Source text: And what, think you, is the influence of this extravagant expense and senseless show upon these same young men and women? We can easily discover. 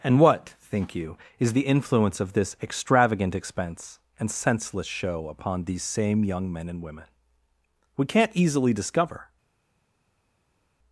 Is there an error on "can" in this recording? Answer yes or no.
yes